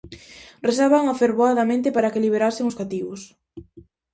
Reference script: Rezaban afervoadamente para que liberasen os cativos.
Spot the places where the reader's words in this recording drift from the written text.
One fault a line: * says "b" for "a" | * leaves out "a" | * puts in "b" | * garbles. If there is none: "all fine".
all fine